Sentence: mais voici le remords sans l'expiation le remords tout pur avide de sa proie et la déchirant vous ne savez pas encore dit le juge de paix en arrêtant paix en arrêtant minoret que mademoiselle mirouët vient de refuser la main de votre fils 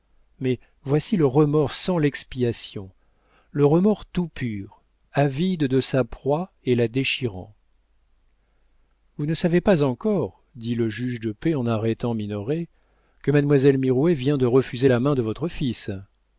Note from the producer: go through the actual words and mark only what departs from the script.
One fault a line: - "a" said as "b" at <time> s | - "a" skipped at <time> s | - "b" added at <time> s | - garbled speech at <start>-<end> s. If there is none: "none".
- "paix en arrêtant" skipped at 12.1 s